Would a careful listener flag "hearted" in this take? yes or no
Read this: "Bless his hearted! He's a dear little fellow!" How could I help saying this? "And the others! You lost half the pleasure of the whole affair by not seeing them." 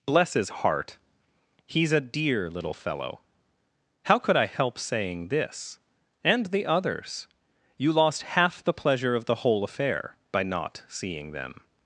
yes